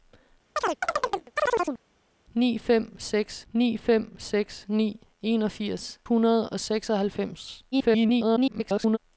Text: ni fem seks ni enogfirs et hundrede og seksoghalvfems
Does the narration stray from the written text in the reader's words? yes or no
yes